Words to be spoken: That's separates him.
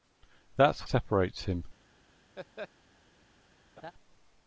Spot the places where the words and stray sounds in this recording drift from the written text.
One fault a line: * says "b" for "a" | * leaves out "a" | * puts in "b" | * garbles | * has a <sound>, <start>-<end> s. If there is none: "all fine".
* has a laugh, 2.4-2.7 s
* has a laugh, 3.8-3.9 s